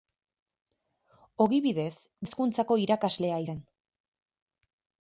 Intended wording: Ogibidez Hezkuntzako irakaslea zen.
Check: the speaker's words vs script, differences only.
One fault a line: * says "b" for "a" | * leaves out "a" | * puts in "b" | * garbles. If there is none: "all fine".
all fine